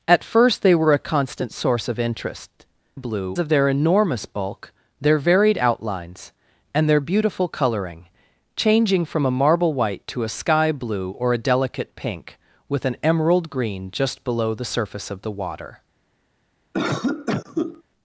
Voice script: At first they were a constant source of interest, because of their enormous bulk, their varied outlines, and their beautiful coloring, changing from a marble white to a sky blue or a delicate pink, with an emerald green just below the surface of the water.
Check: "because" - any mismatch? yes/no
yes